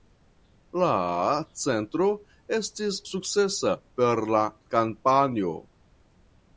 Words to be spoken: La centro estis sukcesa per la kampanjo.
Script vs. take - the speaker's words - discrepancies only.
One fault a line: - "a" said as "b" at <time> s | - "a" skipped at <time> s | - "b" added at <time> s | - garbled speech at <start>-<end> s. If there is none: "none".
none